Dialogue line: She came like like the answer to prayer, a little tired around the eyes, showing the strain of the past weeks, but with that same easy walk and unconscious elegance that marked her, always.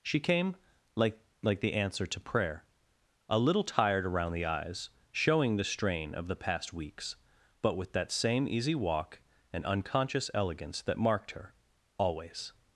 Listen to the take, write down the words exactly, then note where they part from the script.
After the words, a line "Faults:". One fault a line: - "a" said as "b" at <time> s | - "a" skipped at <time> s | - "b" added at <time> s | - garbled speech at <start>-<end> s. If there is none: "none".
She came like like the answer to prayer, a little tired around the eyes, showing the strain of the past weeks, but with that same easy walk and unconscious elegance that marked her, always.
Faults:
none